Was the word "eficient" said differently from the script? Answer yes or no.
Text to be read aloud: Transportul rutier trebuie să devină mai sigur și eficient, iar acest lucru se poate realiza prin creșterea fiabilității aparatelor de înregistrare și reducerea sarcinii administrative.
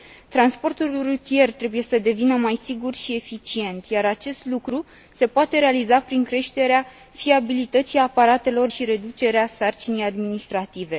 no